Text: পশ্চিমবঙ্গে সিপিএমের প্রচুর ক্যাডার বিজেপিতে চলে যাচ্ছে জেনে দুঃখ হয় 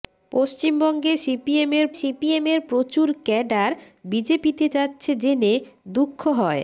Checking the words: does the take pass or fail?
fail